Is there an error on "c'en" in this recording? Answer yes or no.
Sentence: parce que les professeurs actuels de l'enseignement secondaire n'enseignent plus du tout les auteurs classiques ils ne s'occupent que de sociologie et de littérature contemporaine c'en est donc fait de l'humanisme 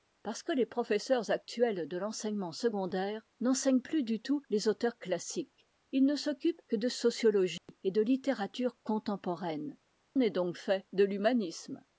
yes